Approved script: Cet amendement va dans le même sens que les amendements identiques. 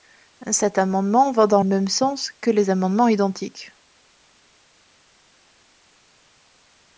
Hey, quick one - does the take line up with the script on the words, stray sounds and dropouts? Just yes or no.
no